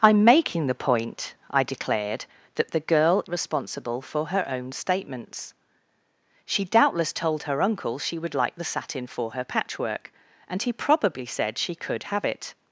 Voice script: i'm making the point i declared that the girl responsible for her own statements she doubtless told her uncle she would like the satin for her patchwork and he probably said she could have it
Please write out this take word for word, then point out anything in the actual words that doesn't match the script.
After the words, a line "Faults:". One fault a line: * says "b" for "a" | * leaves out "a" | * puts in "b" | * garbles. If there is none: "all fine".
i'm making the point i declared that the girl responsible for her own statements she doubtless told her uncle she would like the satin for her patchwork and he probably said she could have it
Faults:
all fine